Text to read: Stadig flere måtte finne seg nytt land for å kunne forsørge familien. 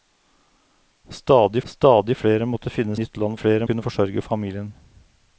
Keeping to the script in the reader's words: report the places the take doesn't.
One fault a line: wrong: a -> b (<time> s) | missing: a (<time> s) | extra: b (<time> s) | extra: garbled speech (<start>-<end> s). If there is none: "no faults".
extra: stadig (1.7 s)
missing: seg (3.0 s)
wrong: for -> flere (3.4 s)